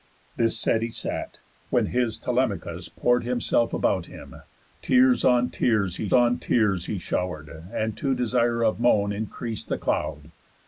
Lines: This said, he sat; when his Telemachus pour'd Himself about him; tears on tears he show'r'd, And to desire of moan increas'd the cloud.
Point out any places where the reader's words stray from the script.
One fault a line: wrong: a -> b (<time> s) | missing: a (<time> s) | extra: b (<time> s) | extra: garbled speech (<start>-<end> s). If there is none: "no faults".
extra: on tears he (6.1 s)